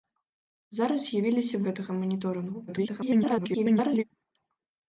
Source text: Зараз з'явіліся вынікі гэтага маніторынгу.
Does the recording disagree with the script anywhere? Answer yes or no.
yes